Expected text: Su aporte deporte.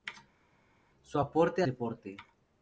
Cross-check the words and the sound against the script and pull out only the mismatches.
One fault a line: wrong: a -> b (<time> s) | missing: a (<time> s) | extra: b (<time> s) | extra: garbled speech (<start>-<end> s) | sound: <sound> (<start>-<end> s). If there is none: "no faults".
no faults